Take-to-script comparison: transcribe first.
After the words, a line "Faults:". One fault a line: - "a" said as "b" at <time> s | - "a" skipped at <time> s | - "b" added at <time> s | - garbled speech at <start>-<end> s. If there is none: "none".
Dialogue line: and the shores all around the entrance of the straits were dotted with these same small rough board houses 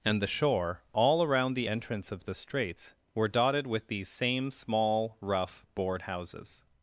and the shore all around the entrance of the straits were dotted with these same small rough board houses
Faults:
- "shores" said as "shore" at 0.3 s